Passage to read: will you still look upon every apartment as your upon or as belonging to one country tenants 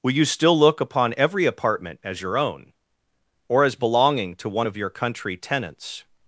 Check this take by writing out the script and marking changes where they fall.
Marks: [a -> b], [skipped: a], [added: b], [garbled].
will you still look upon every apartment as your [upon -> own] or as belonging to one [added: of your] country tenants